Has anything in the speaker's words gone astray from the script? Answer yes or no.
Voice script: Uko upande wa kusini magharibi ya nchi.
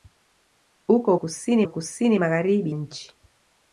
yes